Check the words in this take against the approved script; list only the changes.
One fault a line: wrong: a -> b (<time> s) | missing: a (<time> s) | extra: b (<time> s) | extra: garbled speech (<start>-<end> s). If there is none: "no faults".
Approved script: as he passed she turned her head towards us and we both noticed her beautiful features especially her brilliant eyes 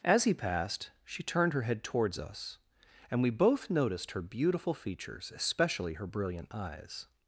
no faults